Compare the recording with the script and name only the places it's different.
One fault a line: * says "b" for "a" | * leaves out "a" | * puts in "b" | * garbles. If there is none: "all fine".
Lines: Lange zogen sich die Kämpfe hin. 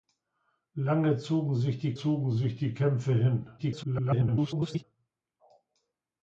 * puts in "zogen sich die"
* garbles